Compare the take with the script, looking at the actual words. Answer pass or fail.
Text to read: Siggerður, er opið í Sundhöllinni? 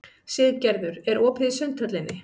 pass